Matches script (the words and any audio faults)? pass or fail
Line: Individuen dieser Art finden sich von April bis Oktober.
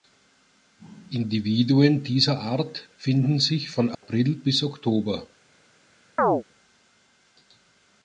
fail